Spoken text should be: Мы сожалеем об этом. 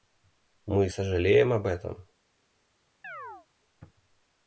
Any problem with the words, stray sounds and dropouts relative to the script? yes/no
yes